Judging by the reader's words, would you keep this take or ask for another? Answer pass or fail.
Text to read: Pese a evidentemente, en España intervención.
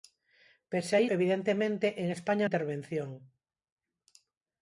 pass